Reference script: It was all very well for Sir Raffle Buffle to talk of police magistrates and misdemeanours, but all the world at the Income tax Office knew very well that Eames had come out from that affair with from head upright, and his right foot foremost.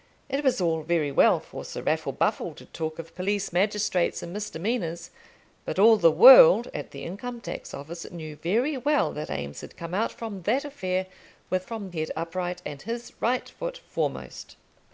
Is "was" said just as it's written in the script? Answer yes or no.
yes